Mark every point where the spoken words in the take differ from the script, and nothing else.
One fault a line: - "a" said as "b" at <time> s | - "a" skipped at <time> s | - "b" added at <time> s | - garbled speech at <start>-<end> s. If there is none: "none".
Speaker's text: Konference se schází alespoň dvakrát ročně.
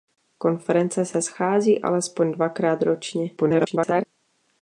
- garbled speech at 3.4-4.1 s